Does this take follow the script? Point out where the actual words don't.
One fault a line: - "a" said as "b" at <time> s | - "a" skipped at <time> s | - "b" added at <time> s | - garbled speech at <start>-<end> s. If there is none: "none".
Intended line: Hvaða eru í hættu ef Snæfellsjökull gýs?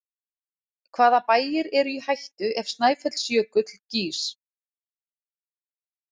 - "bæir" added at 1.3 s